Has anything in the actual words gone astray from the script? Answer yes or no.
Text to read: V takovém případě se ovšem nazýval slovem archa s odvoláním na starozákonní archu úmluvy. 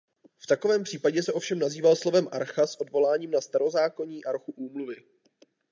no